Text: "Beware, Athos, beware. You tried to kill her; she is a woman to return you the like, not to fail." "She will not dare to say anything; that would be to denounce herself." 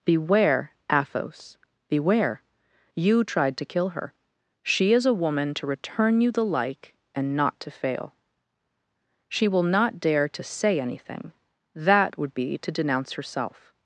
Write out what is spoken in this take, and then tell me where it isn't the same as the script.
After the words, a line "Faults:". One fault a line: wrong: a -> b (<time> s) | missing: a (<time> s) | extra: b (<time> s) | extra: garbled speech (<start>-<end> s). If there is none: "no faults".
"Beware, Athos, beware. You tried to kill her; she is a woman to return you the like, and not to fail." "She will not dare to say anything; that would be to denounce herself."
Faults:
extra: and (7.1 s)